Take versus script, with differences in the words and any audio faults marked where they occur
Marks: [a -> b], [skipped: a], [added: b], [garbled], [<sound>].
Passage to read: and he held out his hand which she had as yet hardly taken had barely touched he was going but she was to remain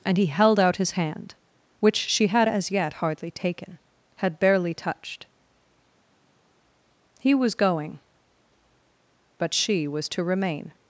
and he held out his hand which she had as yet hardly taken had barely touched he was going but she was to remain